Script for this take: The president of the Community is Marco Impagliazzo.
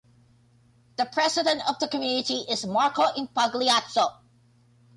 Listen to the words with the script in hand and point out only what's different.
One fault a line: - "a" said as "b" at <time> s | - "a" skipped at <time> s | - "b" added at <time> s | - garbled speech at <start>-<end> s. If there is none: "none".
none